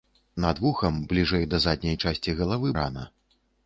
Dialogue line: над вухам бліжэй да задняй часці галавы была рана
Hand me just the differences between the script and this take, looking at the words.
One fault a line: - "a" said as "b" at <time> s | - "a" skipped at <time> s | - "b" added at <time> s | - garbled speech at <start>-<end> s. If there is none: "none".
- "была" skipped at 2.7 s